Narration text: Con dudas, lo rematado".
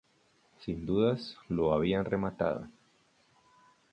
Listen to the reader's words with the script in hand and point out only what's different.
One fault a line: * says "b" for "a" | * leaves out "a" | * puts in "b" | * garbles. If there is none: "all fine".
* says "Sin" for "Con"
* puts in "habían"